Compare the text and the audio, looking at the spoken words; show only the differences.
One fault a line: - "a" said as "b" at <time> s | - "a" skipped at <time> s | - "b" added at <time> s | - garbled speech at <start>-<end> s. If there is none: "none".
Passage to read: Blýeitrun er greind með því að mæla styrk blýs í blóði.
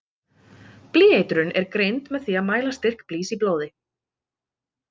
none